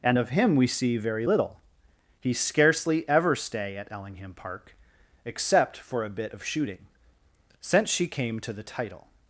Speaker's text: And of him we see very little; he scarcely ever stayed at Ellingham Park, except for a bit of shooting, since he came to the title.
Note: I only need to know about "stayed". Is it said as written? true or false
false